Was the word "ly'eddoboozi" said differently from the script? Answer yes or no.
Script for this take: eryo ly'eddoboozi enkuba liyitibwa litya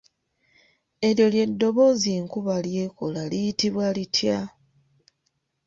no